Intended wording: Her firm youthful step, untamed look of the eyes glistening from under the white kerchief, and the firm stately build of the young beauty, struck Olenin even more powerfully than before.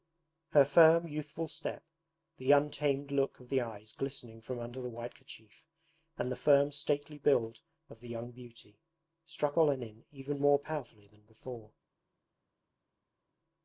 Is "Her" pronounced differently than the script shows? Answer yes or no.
no